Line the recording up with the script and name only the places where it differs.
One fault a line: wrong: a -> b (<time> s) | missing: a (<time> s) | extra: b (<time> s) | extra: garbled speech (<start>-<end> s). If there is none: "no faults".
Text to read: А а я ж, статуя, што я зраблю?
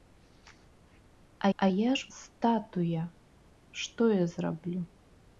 no faults